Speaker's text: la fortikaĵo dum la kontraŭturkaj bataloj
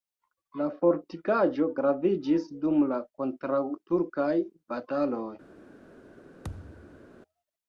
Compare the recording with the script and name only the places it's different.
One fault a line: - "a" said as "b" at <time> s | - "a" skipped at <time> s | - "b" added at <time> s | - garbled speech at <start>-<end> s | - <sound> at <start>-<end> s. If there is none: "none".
- "graviĝis" added at 1.8 s
- thud at 6.4-7.1 s